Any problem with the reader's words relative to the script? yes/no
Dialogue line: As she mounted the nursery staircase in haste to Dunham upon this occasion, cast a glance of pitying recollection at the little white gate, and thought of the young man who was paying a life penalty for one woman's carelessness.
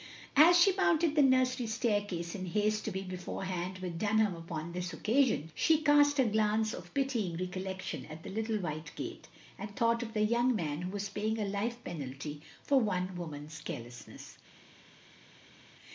yes